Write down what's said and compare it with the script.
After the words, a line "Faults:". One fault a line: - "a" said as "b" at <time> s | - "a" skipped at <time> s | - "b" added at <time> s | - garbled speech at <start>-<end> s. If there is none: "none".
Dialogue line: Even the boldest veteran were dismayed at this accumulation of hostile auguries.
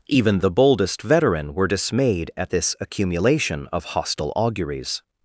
Even the boldest veteran were dismayed at this accumulation of hostile auguries.
Faults:
none